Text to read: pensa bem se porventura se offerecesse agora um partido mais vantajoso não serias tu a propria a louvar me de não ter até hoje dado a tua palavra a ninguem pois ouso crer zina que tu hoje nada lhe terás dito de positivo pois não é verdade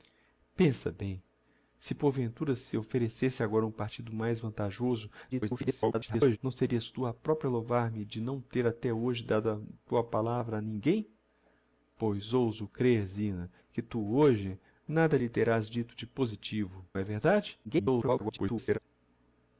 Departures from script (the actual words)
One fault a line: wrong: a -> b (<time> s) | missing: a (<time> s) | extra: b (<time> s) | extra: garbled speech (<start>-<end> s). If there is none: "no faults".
extra: garbled speech (5.3-6.4 s)
missing: pois não (16.8 s)
extra: garbled speech (17.6-18.8 s)